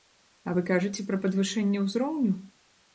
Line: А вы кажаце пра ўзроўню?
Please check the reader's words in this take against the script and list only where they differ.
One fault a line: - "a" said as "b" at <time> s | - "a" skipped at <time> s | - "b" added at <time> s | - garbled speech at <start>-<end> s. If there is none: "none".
- "падвышэнне" added at 1.3 s